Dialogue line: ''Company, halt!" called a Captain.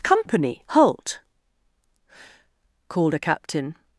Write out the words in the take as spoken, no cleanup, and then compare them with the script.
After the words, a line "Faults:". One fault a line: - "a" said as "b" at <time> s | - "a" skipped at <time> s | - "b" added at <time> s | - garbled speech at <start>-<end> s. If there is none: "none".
''Company, halt!" called a Captain.
Faults:
none